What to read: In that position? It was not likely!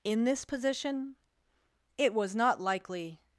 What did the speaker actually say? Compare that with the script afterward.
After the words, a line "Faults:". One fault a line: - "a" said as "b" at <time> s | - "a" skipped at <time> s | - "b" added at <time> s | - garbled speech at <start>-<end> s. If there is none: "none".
In this position? It was not likely!
Faults:
- "that" said as "this" at 0.2 s